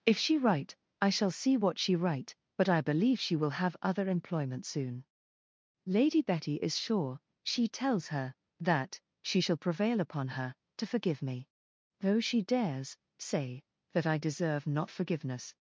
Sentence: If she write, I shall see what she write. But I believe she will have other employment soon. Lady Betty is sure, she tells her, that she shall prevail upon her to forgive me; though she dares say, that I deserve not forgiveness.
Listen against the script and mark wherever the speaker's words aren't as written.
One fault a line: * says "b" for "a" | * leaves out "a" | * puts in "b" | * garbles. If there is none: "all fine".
all fine